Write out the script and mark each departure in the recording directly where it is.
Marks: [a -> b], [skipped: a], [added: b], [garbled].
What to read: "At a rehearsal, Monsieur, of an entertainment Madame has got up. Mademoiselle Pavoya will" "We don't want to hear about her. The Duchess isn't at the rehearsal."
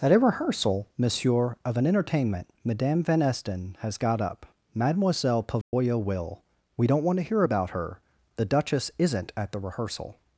"At a rehearsal, Monsieur, of an entertainment Madame [added: van Esten] has got up. Mademoiselle Pavoya will" "We don't want to hear about her. The Duchess isn't at the rehearsal."